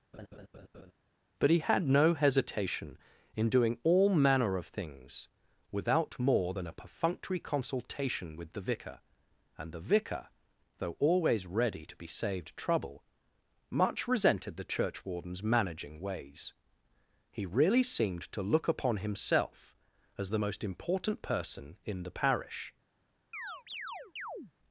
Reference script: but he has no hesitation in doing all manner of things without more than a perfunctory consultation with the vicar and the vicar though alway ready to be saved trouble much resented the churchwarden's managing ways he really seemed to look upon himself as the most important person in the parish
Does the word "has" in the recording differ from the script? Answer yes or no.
yes